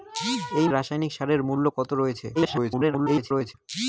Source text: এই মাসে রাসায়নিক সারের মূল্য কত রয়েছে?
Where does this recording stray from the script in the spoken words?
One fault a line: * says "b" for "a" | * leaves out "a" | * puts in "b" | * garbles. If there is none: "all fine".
* leaves out "মাসে"
* garbles